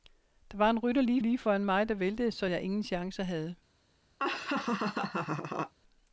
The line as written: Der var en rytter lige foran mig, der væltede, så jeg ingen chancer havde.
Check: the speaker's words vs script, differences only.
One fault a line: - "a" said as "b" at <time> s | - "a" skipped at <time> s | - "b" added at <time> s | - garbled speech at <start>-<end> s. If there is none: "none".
- "lige" added at 1.2 s